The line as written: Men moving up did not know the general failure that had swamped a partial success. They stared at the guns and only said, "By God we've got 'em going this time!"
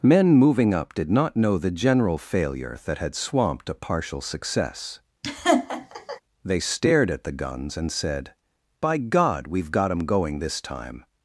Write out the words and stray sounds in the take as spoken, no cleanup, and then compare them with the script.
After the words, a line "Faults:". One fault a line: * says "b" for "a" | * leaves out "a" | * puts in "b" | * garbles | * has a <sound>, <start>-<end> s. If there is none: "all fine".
Men moving up did not know the general failure that had swamped a partial success. They stared at the guns and said, "By God we've got 'em going this time!"
Faults:
* has a laugh, 5.2-6.2 s
* leaves out "only"